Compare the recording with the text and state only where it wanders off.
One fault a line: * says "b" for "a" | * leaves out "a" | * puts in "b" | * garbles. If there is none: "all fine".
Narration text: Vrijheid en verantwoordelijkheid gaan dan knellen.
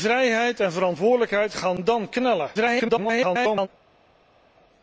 * garbles